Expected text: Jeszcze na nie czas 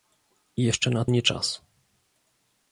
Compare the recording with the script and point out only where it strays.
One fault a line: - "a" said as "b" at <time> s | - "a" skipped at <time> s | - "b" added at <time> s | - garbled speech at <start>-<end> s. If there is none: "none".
none